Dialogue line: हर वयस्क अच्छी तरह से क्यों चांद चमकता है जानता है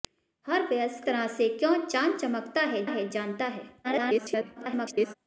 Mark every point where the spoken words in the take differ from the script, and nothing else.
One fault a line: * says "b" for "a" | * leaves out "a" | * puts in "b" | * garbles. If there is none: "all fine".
* leaves out "अच्छी"
* puts in "है"
* garbles